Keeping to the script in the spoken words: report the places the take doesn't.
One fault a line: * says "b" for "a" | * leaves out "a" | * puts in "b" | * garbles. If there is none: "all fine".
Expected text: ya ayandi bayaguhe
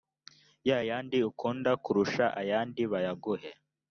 * puts in "yandi ukunda kurusha"